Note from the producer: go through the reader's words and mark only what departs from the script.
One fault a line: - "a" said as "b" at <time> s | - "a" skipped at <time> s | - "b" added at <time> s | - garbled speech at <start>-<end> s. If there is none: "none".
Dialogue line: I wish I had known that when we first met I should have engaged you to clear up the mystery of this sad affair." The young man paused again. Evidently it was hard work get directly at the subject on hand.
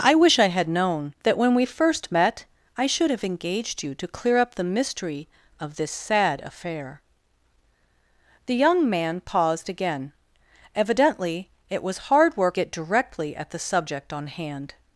none